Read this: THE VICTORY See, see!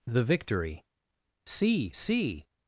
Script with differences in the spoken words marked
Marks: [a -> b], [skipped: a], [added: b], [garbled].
THE VICTORY See, see!